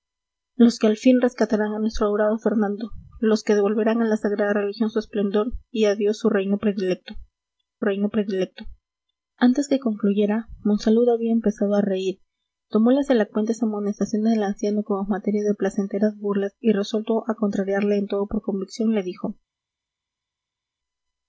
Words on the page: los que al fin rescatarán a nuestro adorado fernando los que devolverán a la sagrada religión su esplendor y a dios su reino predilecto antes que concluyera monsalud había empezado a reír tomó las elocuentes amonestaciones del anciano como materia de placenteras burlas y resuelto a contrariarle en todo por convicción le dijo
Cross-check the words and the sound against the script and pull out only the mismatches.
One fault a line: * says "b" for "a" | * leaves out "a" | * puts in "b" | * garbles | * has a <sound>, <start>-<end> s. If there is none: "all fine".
* puts in "reino predilecto"